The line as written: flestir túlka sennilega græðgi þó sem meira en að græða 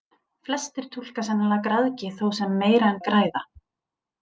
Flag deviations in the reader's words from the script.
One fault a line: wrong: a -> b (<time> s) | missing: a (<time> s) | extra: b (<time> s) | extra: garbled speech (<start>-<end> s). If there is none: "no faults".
no faults